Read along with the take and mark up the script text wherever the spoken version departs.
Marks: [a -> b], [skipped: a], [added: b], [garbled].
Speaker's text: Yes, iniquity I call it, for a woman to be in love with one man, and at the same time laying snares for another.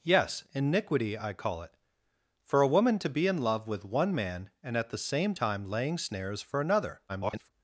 Yes, iniquity I call it, for a woman to be in love with one man, and at the same time laying snares for another. [garbled]